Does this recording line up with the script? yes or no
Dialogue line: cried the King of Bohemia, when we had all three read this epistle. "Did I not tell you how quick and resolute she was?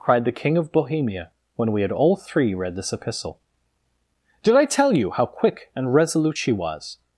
no